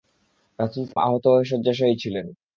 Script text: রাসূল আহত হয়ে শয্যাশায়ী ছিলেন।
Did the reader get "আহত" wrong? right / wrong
right